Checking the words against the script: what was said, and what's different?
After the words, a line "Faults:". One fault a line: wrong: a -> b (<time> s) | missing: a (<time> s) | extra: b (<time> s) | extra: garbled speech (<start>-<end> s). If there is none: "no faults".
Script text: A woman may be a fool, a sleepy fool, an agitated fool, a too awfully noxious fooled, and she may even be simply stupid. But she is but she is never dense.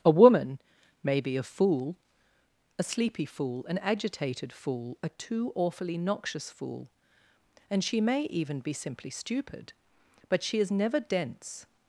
A woman may be a fool, a sleepy fool, an agitated fool, a too awfully noxious fool, and she may even be simply stupid. But she is never dense.
Faults:
wrong: fooled -> fool (6.5 s)
missing: but she is (10.7 s)